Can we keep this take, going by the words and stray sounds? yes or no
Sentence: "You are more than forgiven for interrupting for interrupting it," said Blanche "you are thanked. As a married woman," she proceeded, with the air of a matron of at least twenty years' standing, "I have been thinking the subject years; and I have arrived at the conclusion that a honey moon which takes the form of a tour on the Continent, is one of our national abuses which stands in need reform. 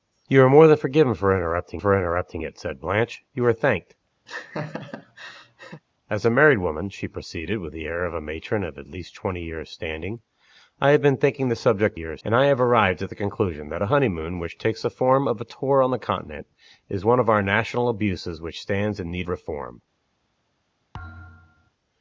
no